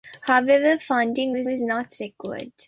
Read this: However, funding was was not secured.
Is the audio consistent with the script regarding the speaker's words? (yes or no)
yes